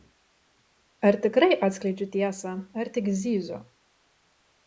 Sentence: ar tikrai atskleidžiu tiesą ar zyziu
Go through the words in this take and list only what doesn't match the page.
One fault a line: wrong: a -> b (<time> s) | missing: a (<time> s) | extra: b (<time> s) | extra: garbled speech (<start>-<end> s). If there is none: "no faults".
extra: tik (3.0 s)